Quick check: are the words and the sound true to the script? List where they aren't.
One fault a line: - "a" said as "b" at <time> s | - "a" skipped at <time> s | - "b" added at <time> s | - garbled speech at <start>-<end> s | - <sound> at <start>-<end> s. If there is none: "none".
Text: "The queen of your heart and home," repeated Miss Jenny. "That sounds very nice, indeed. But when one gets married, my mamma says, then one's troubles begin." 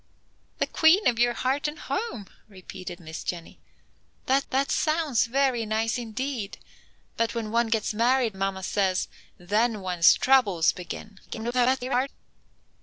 - "that" added at 4.5 s
- "my" skipped at 8.4 s
- garbled speech at 11.3-12.1 s